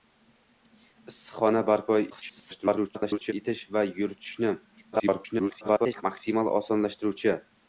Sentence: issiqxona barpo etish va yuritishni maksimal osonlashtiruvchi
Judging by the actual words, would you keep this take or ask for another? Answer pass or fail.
fail